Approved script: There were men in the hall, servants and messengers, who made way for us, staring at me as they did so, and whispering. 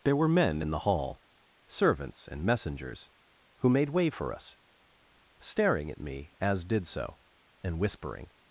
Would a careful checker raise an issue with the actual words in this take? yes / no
yes